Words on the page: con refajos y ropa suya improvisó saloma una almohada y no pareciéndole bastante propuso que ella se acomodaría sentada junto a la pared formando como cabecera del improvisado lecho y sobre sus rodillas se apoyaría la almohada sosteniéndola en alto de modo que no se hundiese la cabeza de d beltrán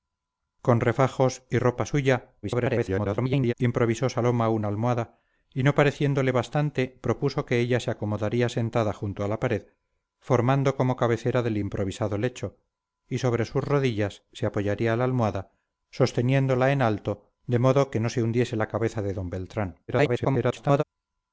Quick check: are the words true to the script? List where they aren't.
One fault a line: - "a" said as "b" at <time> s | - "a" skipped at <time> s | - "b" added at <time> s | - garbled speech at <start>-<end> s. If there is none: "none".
- garbled speech at 2.4-3.5 s
- garbled speech at 19.9-20.8 s